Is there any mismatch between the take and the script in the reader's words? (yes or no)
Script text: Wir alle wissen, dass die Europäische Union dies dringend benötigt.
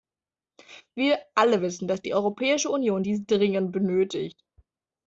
no